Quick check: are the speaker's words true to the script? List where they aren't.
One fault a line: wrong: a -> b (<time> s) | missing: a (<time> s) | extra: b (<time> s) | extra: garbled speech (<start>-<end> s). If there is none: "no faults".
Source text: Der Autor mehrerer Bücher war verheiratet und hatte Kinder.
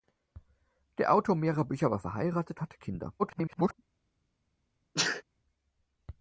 missing: und (2.6 s)
extra: garbled speech (3.2-3.7 s)